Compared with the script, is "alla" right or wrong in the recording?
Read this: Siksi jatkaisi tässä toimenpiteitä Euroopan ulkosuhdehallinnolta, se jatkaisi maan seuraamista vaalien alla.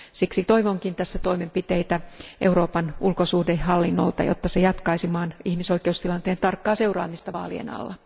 right